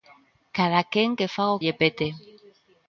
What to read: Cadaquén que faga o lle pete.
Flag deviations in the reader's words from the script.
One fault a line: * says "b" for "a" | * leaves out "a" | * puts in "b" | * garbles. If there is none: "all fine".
all fine